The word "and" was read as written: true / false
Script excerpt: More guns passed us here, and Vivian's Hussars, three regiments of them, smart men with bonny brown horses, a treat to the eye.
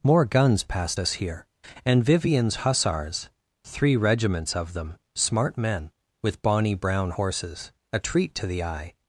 true